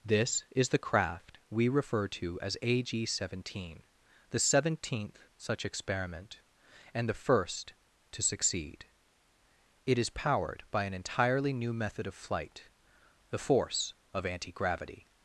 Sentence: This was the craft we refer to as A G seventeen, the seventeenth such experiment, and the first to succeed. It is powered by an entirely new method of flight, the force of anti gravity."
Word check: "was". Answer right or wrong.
wrong